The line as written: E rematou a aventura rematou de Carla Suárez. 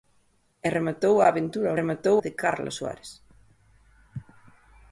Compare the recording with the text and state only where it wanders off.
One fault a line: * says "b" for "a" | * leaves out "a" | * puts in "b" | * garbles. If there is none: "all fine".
all fine